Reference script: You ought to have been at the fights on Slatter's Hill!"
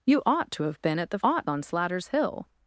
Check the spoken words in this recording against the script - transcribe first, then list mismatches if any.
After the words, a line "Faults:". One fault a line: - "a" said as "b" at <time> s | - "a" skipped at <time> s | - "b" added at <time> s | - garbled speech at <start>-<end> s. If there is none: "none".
You ought to have been at the ought on Slatter's Hill!"
Faults:
- "fights" said as "ought" at 1.2 s